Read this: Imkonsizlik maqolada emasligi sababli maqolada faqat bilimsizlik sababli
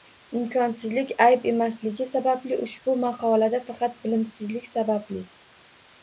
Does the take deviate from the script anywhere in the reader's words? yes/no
yes